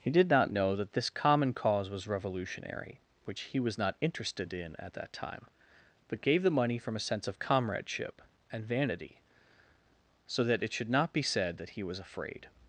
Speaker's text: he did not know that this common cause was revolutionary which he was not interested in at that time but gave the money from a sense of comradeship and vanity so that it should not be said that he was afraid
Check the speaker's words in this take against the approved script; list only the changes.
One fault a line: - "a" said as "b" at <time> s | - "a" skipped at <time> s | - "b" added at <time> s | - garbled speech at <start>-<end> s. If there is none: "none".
none